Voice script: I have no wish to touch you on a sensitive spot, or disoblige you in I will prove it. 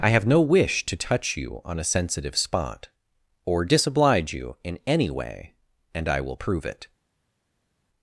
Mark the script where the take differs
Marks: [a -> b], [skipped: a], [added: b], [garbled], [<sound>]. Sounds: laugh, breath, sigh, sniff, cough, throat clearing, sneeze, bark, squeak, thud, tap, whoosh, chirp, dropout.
I have no wish to touch you on a sensitive spot, or disoblige you in [added: any way and] I will prove it.